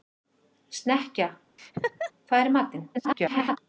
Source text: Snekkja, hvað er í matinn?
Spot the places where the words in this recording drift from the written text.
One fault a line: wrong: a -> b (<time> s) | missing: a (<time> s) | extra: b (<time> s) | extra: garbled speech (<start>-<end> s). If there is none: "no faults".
extra: garbled speech (2.9-3.6 s)